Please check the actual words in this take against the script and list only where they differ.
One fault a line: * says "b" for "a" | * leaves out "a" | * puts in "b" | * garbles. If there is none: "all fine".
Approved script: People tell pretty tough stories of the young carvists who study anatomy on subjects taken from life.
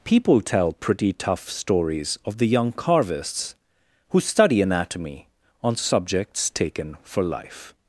* says "for" for "from"